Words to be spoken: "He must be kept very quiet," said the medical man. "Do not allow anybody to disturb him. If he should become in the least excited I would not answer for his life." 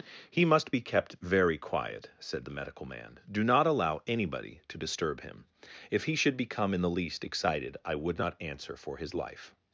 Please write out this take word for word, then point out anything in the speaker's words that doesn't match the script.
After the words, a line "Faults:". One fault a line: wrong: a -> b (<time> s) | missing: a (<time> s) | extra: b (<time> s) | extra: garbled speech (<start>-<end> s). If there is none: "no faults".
"He must be kept very quiet," said the medical man. "Do not allow anybody to disturb him. If he should become in the least excited I would not answer for his life."
Faults:
no faults